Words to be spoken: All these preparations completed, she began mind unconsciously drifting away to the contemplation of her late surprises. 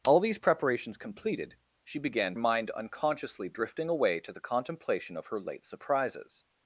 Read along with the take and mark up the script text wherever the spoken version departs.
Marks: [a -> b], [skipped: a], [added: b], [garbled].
All these preparations completed, she began mind unconsciously drifting away to the contemplation of her late surprises.